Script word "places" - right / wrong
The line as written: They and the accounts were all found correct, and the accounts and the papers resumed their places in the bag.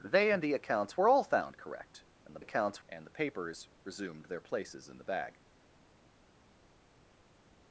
right